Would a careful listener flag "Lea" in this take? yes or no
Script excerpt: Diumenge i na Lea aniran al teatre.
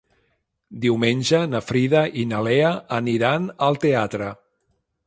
no